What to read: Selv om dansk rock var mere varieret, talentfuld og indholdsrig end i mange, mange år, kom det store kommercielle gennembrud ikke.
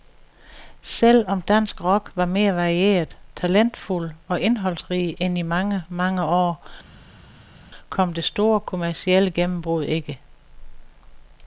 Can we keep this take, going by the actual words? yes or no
yes